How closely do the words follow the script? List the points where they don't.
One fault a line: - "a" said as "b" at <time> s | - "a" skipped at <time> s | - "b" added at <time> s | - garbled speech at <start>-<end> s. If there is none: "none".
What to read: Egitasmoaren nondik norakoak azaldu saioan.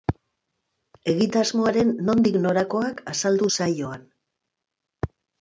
none